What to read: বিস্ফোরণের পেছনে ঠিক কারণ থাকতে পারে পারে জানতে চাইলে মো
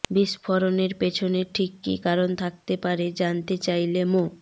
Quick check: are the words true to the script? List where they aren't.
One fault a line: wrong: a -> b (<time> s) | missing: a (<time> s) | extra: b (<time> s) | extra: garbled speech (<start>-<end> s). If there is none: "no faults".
extra: কী (1.8 s)
missing: পারে (3.0 s)